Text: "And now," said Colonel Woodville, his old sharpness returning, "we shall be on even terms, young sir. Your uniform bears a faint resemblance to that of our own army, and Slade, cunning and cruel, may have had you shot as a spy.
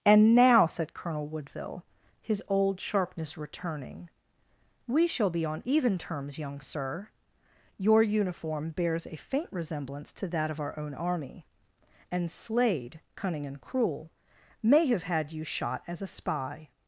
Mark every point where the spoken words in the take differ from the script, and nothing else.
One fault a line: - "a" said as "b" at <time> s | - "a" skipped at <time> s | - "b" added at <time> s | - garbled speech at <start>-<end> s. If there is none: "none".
none